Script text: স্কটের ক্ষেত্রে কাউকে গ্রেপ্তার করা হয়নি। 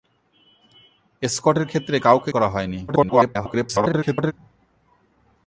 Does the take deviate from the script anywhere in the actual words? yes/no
yes